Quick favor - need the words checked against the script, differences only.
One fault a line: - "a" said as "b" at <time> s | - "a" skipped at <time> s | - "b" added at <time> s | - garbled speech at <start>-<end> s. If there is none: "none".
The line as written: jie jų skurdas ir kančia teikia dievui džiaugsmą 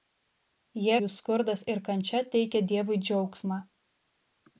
none